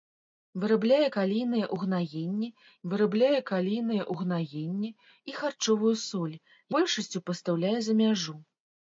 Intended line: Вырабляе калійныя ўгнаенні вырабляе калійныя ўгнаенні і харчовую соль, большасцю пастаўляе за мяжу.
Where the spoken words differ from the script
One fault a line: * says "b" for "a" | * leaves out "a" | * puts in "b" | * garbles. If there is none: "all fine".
all fine